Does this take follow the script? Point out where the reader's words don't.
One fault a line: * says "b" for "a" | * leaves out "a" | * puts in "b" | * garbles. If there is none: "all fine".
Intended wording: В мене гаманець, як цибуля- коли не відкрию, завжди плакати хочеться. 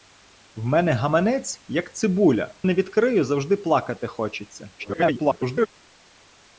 * leaves out "коли"
* garbles